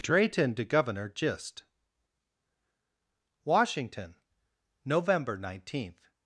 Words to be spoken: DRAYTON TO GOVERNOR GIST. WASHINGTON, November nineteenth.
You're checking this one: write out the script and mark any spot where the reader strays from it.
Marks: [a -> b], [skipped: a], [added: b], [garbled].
DRAYTON TO GOVERNOR GIST. WASHINGTON, November nineteenth.